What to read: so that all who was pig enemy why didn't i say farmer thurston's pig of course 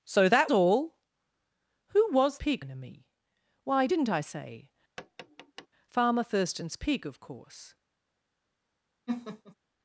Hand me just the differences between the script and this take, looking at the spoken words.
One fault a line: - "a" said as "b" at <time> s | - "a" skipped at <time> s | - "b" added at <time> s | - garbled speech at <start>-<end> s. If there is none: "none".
none